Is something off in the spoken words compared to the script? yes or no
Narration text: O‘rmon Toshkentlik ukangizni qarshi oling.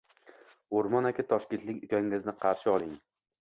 yes